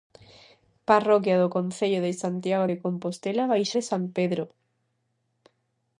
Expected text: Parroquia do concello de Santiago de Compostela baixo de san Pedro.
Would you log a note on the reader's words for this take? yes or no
no